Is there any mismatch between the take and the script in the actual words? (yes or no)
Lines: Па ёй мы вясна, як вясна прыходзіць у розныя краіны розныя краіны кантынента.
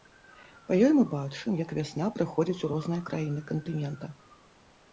yes